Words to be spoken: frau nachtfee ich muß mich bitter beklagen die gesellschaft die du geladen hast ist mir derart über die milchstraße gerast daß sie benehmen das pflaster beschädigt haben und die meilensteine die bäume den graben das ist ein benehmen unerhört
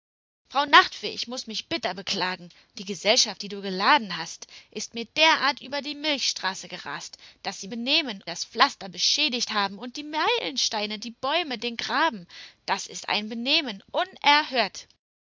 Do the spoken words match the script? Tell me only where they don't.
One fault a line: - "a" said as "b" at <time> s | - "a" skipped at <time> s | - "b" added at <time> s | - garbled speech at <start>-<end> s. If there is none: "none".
none